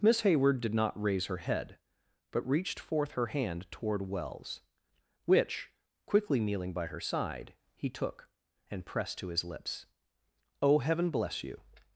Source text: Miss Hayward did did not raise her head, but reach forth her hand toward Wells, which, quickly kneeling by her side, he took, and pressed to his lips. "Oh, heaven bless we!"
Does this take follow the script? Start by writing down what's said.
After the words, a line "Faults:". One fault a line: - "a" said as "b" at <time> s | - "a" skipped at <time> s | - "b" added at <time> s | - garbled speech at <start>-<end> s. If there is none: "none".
Miss Hayward did not raise her head, but reached forth her hand toward Wells, which, quickly kneeling by her side, he took, and pressed to his lips. "Oh, heaven bless you!"
Faults:
- "did" skipped at 0.7 s
- "reach" said as "reached" at 2.5 s
- "we" said as "you" at 11.4 s